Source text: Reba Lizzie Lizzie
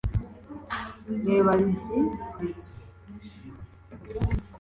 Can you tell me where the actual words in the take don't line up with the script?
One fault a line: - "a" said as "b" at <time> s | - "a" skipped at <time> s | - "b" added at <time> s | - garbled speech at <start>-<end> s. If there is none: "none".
none